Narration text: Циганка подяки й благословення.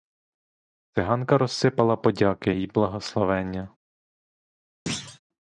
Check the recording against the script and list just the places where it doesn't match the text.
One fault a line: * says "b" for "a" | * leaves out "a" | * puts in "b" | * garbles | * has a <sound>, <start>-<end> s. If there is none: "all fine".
* puts in "розсипала"
* has a thud, 4.9-5.2 s